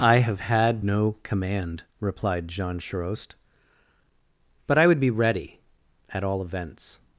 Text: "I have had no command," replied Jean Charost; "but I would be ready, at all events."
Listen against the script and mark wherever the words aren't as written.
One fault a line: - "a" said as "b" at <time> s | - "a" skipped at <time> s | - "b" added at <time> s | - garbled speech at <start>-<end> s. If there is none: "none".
none